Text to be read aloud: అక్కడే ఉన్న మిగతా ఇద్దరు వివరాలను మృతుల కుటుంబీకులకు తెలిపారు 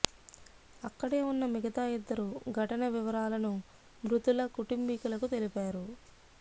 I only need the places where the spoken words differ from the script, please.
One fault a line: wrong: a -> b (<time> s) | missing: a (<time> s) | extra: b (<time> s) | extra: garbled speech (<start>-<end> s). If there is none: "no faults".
extra: ఘటన (2.5 s)